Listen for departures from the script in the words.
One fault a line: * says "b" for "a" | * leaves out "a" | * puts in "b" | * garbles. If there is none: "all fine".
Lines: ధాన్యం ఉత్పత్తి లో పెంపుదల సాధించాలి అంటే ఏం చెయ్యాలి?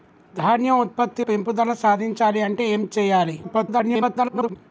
* leaves out "లో"
* garbles